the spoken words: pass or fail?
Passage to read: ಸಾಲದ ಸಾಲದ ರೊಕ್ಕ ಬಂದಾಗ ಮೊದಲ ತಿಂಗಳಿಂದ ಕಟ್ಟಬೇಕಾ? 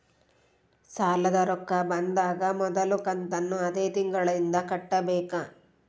fail